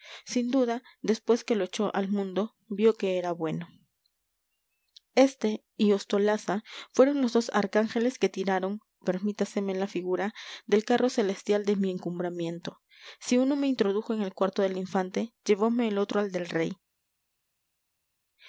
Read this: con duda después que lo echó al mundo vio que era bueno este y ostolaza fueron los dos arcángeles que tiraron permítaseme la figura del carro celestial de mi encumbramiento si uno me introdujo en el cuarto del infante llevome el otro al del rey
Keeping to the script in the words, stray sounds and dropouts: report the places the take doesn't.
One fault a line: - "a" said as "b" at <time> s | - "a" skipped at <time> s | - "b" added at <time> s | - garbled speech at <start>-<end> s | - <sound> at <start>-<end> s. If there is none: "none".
- "con" said as "sin" at 0.2 s